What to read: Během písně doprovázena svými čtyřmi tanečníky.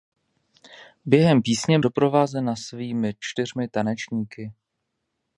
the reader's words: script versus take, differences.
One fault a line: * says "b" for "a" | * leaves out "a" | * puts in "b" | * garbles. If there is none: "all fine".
all fine